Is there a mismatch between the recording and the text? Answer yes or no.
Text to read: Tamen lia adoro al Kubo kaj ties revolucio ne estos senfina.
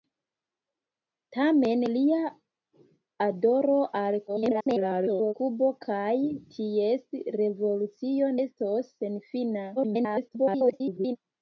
yes